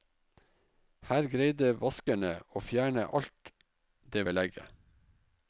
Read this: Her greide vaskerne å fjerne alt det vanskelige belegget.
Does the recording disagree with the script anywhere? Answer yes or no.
yes